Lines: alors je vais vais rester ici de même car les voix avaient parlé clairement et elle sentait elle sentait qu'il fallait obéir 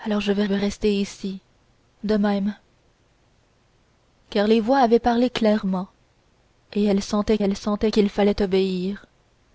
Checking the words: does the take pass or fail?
pass